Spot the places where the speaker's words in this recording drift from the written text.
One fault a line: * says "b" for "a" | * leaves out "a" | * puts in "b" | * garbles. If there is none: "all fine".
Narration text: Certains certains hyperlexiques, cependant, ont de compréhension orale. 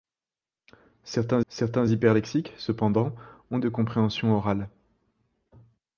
all fine